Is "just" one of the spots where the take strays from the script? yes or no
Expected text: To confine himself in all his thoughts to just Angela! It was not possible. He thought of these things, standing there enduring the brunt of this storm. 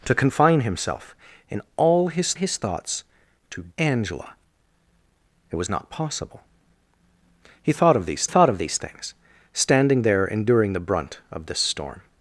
yes